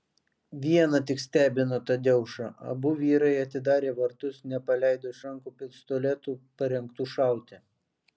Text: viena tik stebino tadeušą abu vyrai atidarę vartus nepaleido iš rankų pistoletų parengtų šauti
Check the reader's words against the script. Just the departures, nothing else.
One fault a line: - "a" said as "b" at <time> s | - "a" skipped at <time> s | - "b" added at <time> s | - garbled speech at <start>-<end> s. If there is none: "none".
none